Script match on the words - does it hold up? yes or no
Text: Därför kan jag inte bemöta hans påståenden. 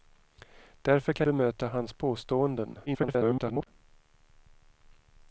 no